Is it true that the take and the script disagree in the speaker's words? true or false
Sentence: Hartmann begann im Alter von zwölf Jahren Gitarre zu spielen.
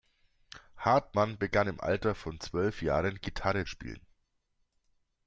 true